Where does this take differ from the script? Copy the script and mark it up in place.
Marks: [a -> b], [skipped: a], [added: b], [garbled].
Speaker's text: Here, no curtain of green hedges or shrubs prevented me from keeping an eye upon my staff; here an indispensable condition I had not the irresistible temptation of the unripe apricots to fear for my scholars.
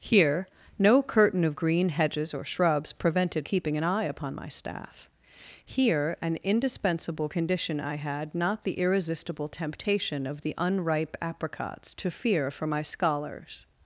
Here, no curtain of green hedges or shrubs prevented [skipped: me from] keeping an eye upon my staff; here an indispensable condition I had not the irresistible temptation of the unripe apricots to fear for my scholars.